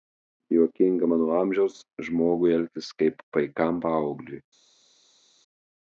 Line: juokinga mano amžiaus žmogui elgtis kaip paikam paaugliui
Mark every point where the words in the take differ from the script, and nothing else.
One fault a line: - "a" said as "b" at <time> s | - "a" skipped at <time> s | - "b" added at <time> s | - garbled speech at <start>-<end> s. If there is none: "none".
none